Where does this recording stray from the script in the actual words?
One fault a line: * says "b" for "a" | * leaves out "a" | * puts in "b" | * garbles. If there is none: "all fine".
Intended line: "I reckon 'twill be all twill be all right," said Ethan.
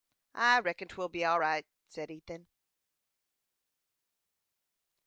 * leaves out "twill be all"